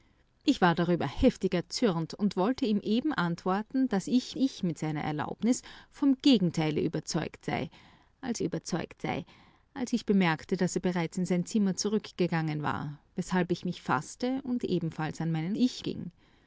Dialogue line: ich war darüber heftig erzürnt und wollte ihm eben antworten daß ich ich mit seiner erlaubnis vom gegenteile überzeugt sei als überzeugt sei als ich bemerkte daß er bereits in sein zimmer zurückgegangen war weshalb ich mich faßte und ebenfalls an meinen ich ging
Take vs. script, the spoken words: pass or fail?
pass